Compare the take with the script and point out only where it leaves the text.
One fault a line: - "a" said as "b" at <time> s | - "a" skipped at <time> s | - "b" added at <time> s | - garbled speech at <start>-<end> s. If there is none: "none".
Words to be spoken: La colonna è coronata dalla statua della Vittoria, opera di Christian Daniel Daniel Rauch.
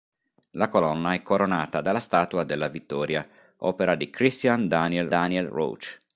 none